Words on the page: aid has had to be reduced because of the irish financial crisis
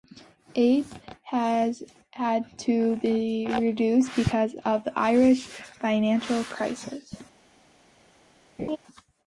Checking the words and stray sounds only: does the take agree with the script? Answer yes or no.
no